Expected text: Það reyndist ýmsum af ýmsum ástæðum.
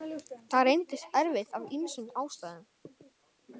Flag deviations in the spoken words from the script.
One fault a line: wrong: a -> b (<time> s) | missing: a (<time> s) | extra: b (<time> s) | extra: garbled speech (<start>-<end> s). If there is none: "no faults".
wrong: ýmsum -> erfitt (1.2 s)